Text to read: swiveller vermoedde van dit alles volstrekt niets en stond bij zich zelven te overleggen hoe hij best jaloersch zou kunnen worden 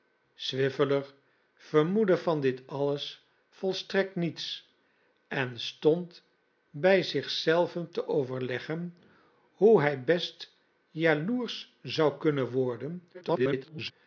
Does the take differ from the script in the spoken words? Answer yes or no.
yes